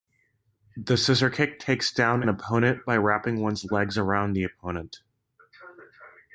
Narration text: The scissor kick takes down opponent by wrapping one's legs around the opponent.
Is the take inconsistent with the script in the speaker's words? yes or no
no